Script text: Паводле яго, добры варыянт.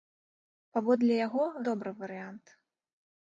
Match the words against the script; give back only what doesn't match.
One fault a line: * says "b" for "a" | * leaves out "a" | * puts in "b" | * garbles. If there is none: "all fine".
all fine